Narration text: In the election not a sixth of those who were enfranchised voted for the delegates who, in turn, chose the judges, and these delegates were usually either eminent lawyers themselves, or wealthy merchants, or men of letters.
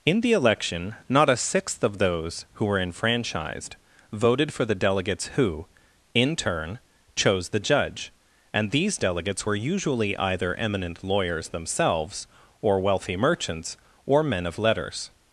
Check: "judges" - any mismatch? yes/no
yes